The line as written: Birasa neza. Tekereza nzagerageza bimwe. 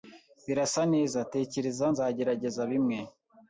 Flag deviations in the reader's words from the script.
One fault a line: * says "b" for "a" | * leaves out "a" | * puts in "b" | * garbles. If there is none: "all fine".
all fine